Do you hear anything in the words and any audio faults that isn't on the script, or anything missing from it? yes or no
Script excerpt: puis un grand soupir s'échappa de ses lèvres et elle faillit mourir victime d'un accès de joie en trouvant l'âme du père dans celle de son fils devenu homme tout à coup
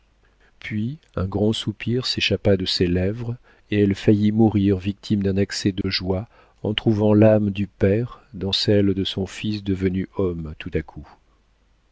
yes